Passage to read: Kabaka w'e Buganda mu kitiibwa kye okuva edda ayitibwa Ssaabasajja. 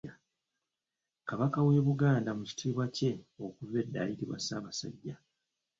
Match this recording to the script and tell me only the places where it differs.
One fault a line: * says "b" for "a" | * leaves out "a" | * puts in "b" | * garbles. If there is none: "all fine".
all fine